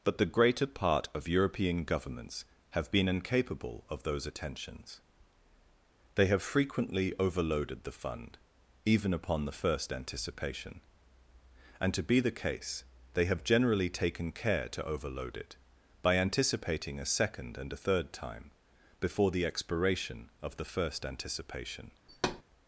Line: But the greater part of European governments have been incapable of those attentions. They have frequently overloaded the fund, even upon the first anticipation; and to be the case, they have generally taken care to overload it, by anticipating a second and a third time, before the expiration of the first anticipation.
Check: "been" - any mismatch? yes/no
no